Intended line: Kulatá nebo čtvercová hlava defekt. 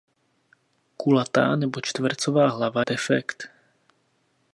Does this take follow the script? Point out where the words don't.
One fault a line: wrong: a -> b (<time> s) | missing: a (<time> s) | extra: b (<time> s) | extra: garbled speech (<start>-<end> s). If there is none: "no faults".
no faults